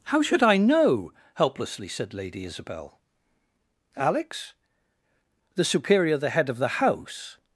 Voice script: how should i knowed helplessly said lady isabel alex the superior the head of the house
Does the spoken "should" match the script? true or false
true